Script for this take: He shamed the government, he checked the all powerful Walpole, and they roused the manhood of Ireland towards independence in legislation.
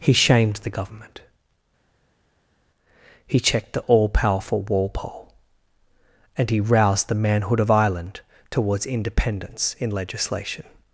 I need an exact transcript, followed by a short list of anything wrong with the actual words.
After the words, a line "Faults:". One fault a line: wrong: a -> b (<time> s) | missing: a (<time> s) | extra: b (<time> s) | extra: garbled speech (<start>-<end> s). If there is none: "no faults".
He shamed the government, he checked the all powerful Walpole, and he roused the manhood of Ireland towards independence in legislation.
Faults:
wrong: they -> he (6.5 s)